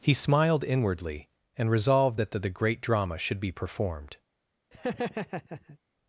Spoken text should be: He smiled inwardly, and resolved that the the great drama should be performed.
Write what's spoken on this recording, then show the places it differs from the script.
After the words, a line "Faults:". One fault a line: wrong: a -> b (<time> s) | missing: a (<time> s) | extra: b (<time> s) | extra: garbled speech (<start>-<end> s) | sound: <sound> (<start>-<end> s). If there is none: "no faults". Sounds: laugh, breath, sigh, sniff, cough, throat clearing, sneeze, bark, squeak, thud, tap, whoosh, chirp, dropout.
He smiled inwardly, and resolved that the the great drama should be performed.
Faults:
sound: laugh (4.7-5.8 s)